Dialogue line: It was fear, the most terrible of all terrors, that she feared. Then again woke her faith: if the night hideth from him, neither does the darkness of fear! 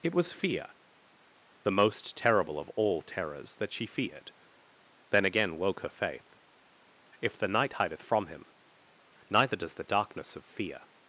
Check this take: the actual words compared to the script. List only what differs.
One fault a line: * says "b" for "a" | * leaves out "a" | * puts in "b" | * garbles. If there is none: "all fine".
all fine